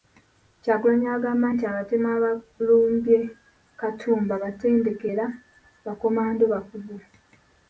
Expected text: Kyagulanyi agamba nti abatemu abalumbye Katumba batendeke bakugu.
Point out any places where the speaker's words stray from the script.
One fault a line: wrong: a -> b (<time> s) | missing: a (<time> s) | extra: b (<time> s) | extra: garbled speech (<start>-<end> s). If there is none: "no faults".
extra: era bakomando (5.1 s)